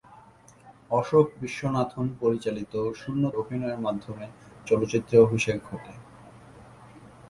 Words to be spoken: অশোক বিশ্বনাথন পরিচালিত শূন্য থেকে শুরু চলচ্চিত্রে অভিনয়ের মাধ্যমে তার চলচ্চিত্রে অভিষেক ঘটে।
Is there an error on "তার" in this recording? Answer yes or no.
yes